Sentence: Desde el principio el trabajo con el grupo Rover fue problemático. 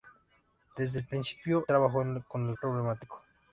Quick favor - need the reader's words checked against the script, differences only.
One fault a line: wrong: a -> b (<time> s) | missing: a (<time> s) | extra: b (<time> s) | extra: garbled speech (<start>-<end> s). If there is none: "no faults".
missing: el (1.7 s)
missing: grupo Rover fue (2.6 s)